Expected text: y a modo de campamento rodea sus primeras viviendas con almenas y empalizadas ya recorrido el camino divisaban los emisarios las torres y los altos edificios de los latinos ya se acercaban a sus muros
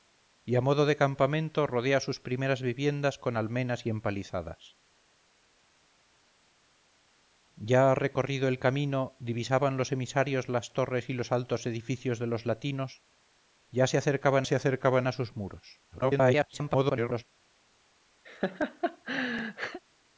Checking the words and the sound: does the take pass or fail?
fail